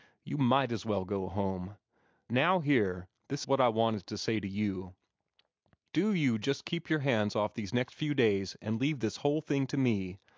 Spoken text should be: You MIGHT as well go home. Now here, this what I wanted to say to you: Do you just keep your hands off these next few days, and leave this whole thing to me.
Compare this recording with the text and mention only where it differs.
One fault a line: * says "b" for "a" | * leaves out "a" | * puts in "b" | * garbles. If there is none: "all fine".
all fine